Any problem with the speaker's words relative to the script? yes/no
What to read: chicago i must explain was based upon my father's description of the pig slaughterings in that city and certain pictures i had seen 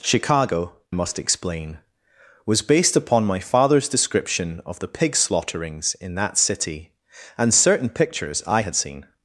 yes